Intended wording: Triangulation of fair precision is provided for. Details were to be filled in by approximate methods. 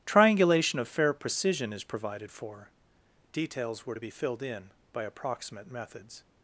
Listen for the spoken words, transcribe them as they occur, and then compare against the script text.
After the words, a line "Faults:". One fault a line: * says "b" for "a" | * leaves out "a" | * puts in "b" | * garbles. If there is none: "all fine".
Triangulation of fair precision is provided for. Details were to be filled in by approximate methods.
Faults:
all fine